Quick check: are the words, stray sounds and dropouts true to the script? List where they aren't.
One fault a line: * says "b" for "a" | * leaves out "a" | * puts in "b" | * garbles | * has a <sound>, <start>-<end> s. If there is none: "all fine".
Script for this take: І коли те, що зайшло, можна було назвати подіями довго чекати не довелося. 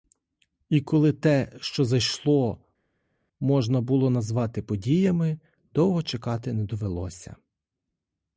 all fine